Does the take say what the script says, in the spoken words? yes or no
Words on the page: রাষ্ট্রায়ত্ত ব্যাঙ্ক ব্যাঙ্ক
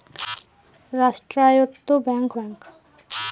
yes